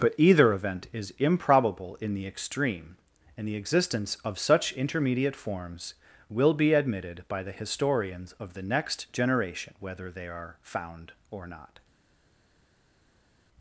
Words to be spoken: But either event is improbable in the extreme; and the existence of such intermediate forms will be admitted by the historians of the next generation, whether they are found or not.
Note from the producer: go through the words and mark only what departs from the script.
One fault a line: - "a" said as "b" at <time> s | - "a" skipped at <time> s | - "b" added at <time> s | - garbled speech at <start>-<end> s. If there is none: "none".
none